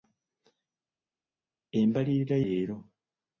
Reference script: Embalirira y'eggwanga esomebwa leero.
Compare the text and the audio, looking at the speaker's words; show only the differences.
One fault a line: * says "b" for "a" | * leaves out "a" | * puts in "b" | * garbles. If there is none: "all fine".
* leaves out "y'eggwanga esomebwa"